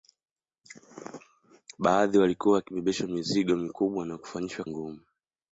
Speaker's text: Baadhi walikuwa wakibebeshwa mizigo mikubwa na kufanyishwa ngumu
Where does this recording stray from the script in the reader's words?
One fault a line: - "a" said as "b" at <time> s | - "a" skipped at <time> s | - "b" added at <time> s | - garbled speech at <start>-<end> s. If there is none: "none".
none